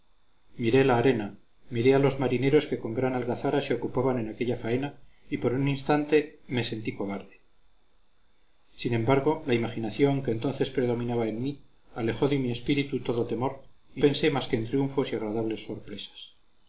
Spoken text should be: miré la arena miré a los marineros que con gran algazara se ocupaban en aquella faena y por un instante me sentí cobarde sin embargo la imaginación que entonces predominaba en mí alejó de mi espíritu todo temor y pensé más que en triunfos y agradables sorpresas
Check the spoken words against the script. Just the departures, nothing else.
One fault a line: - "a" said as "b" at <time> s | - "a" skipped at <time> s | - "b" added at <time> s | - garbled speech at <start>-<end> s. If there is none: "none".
none